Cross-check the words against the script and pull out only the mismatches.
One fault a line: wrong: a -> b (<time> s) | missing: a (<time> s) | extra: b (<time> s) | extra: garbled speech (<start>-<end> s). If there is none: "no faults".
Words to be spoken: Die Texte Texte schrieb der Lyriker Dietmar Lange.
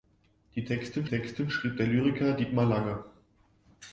no faults